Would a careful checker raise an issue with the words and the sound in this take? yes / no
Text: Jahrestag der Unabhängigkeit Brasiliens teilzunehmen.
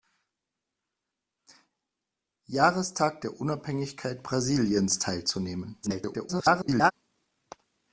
yes